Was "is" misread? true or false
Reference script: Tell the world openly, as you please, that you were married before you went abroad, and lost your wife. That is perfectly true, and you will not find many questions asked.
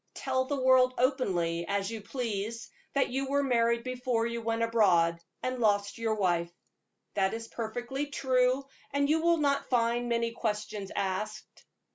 false